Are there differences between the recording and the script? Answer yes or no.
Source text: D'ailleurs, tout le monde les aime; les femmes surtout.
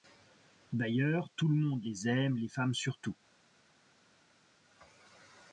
no